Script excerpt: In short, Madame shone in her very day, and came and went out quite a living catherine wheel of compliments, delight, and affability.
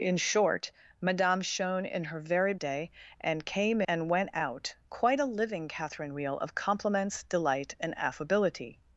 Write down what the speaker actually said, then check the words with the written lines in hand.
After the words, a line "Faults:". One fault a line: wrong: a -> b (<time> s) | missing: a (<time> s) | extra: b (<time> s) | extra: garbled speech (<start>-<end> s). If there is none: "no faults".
In short, Madame shone in her very day, and came and went out quite a living catherine wheel of compliments, delight, and affability.
Faults:
no faults